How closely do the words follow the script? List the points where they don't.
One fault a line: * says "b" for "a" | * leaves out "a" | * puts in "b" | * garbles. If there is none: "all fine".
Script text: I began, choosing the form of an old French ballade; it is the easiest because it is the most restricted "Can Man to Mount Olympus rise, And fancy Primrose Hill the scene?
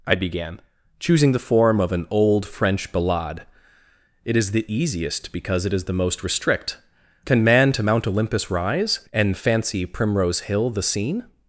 * says "restrict" for "restricted"